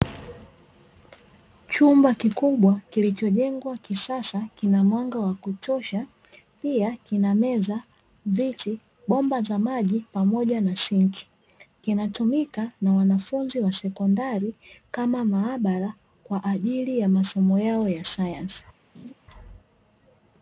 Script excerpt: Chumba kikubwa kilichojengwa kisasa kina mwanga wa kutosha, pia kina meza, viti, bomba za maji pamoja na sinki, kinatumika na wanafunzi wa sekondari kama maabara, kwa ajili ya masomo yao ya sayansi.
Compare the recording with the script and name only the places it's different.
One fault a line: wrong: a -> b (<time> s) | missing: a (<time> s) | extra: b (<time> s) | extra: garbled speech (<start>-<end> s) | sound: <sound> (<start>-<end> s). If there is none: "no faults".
sound: laugh (18.9-19.1 s)